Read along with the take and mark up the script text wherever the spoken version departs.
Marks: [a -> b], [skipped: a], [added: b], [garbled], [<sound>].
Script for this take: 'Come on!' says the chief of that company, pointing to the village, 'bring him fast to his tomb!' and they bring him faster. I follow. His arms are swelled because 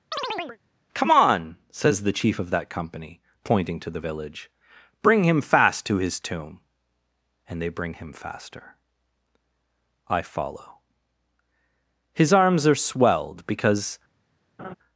[chirp] 'Come on!' says the chief of that company, pointing to the village, 'bring him fast to his tomb!' and they bring him faster. I follow. His arms are swelled because [laugh]